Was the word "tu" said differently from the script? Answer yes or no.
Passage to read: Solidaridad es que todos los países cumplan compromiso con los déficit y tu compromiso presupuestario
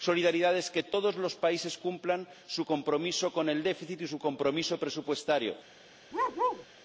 yes